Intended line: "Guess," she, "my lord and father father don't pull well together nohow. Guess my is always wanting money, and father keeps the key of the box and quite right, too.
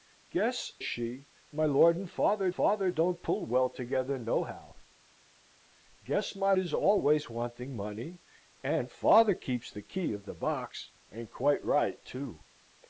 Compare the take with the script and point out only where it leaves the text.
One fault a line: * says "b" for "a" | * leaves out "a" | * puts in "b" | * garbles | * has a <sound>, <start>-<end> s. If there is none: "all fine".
all fine